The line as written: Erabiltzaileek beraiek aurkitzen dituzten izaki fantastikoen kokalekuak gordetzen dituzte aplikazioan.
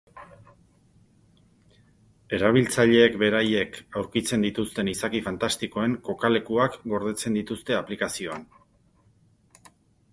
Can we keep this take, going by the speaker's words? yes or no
yes